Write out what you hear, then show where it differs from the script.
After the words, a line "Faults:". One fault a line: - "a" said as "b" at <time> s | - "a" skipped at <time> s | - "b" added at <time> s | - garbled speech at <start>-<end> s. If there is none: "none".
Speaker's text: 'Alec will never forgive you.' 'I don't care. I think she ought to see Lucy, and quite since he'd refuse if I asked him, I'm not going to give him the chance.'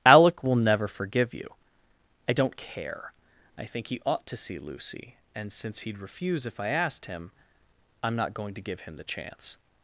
'Alec will never forgive you.' 'I don't care. I think he ought to see Lucy, and since he'd refuse if I asked him, I'm not going to give him the chance.'
Faults:
- "she" said as "he" at 3.9 s
- "quite" skipped at 5.5 s